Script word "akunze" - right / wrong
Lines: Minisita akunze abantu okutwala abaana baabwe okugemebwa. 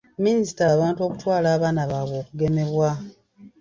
wrong